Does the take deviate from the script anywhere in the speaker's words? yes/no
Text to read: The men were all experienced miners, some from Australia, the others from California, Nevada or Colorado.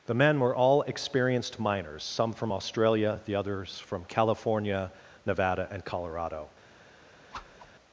yes